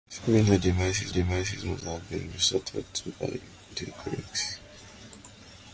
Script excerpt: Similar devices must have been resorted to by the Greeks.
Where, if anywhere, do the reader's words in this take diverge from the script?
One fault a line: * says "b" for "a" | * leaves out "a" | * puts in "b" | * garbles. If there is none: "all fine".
* puts in "devices"